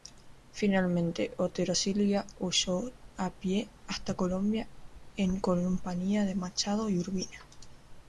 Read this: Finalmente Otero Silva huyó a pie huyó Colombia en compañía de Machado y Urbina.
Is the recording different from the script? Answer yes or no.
yes